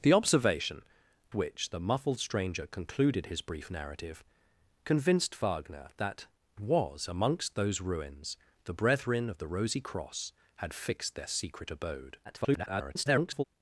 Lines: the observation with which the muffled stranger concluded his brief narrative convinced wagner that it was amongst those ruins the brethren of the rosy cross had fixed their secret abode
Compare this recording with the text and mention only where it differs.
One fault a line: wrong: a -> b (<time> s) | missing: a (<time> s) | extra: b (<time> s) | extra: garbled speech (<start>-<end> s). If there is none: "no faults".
missing: with (0.8 s)
missing: it (6.3 s)
extra: garbled speech (12.2-13.4 s)